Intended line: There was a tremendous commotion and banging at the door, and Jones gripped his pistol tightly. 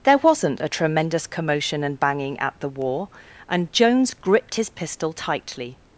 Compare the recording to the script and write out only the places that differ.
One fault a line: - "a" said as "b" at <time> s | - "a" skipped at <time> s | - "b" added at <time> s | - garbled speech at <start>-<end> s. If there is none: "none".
- "was" said as "wasn't" at 0.2 s
- "door" said as "war" at 2.7 s